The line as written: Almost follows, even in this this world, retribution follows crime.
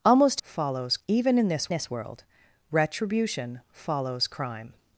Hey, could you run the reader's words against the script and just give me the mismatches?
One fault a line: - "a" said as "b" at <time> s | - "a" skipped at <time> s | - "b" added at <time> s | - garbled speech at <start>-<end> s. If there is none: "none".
none